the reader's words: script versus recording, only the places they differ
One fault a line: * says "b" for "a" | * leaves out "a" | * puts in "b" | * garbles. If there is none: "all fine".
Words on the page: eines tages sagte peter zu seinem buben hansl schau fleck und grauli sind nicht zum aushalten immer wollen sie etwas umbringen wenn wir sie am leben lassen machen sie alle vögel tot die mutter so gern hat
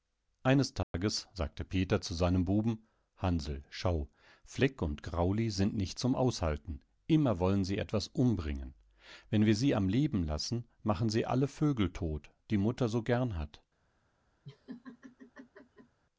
all fine